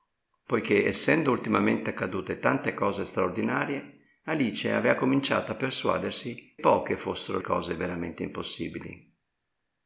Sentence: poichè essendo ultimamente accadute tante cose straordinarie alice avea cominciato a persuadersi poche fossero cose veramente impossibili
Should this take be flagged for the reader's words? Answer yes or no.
no